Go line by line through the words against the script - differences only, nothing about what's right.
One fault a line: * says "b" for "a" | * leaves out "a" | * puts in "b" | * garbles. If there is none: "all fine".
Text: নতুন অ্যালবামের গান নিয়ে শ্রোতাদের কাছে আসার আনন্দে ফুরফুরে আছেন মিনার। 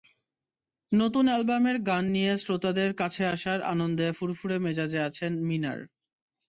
* puts in "মেজাজে"